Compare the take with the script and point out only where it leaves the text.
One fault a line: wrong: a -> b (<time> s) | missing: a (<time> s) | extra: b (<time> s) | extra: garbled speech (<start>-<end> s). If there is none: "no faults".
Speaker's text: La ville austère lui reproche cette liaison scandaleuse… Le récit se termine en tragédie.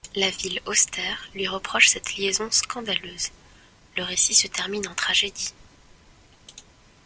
no faults